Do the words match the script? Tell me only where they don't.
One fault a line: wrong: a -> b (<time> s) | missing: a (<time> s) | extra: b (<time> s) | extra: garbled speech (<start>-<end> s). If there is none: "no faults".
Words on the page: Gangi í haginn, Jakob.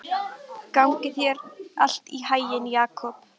extra: þér allt (1.2 s)